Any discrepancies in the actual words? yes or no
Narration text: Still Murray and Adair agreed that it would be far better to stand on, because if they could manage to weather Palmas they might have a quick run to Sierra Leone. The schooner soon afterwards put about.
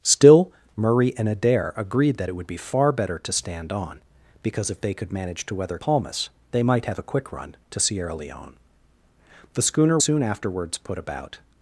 no